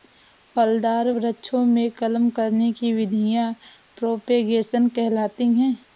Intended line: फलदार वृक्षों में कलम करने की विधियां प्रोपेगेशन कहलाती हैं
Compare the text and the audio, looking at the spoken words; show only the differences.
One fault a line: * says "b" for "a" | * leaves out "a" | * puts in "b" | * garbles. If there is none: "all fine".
all fine